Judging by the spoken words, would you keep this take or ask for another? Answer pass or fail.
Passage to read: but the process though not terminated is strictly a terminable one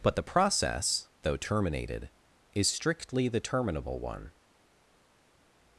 fail